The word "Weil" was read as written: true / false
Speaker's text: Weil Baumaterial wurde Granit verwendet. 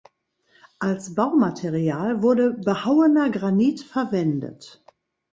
false